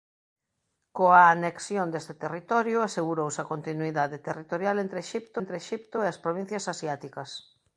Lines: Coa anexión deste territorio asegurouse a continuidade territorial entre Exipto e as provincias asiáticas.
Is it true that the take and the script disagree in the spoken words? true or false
true